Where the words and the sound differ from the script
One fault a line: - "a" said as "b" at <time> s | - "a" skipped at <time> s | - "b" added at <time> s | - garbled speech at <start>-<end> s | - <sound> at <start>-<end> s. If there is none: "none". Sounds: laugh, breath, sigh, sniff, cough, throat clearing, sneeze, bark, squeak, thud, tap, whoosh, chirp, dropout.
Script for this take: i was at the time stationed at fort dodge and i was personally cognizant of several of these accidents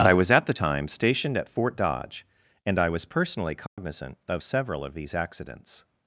- dropout at 3.7-3.8 s